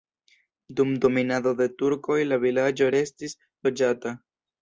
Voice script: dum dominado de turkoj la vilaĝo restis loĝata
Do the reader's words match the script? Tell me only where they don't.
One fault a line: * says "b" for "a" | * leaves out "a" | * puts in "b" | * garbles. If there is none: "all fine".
all fine